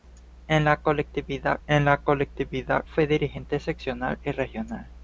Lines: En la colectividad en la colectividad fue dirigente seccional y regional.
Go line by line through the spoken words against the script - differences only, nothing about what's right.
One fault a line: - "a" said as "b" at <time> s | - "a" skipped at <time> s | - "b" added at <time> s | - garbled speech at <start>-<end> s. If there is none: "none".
none